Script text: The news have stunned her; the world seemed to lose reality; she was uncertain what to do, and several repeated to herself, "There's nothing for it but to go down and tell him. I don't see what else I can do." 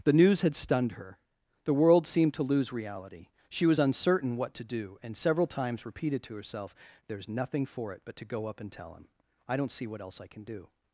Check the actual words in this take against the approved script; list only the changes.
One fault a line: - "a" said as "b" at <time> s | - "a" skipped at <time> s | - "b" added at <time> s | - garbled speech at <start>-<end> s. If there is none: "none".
- "have" said as "had" at 0.4 s
- "times" added at 5.5 s
- "down" said as "up" at 8.5 s